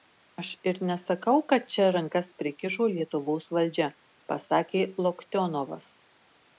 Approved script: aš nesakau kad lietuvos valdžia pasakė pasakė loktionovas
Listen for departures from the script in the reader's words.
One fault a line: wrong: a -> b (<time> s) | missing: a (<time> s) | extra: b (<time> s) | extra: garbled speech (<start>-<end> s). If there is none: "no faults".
extra: ir (0.7 s)
extra: čia rankas prikišo (1.7 s)
missing: pasakė (4.9 s)